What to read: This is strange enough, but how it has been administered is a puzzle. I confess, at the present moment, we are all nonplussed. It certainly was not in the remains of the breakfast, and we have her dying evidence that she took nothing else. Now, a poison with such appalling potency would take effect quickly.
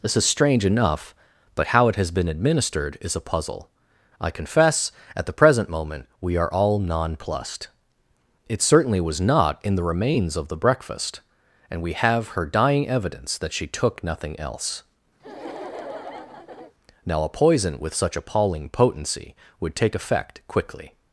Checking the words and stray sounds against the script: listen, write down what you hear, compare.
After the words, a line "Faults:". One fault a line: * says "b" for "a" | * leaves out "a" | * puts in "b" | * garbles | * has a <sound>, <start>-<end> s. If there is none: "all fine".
This is strange enough, but how it has been administered is a puzzle. I confess, at the present moment, we are all nonplussed. It certainly was not in the remains of the breakfast, and we have her dying evidence that she took nothing else. Now, a poison with such appalling potency would take effect quickly.
Faults:
* has a laugh, 15.2-16.7 s